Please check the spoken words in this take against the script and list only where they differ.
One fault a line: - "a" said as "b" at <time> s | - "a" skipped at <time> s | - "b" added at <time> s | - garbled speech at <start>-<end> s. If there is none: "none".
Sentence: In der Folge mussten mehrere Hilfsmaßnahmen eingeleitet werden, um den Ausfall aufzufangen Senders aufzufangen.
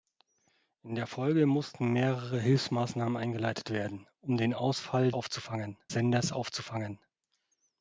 none